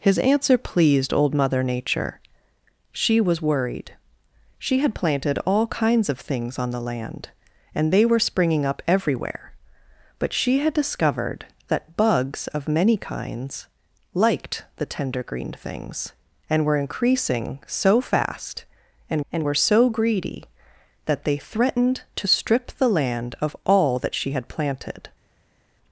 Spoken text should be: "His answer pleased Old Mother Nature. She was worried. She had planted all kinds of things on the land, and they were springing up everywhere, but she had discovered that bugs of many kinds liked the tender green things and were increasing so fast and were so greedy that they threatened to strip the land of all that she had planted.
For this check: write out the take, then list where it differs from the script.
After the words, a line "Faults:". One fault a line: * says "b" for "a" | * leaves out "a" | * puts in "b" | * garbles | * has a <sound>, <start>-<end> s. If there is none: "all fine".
"His answer pleased Old Mother Nature. She was worried. She had planted all kinds of things on the land, and they were springing up everywhere, but she had discovered that bugs of many kinds liked the tender green things and were increasing so fast and and were so greedy that they threatened to strip the land of all that she had planted.
Faults:
* puts in "and"